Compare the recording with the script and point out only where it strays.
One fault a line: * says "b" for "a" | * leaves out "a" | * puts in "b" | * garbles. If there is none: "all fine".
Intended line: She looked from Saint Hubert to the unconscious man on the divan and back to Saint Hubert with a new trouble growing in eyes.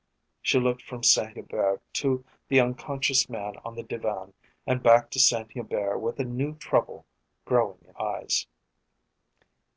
all fine